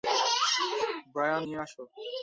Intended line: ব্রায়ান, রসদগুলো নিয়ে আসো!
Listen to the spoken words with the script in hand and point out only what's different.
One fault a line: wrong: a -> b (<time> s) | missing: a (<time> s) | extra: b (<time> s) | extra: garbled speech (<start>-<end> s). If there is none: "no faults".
missing: রসদগুলো (1.4 s)